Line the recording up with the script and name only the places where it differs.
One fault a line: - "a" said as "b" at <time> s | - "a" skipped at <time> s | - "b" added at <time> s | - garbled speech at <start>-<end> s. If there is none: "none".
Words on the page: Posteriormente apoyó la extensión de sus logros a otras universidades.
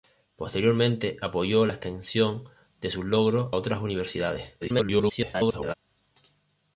- "a" skipped at 3.5 s
- garbled speech at 4.6-5.7 s